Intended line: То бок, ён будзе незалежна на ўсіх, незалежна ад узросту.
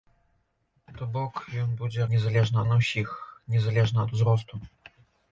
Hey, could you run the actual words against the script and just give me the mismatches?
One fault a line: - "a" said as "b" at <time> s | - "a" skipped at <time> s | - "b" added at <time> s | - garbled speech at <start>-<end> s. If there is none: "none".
none